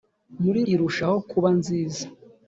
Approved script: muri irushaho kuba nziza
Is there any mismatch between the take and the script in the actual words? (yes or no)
no